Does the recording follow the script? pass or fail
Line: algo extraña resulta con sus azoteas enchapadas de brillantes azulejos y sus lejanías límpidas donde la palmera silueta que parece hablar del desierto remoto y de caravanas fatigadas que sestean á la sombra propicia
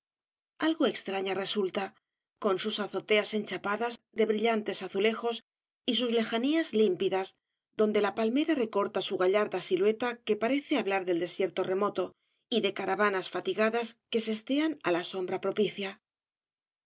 fail